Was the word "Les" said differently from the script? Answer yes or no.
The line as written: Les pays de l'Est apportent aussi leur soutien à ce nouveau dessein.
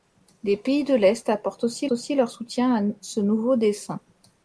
no